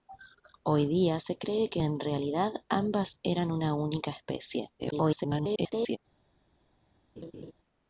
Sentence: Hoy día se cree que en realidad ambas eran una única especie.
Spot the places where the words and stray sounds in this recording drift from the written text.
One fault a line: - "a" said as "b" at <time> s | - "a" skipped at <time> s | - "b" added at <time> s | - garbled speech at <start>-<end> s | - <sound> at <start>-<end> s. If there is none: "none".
- garbled speech at 4.8-6.0 s
- laugh at 7.2-7.5 s